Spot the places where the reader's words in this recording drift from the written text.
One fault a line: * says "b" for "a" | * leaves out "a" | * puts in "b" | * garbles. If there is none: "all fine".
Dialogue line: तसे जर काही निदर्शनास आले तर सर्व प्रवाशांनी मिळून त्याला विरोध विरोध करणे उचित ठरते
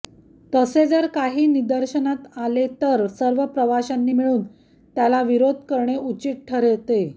* leaves out "विरोध"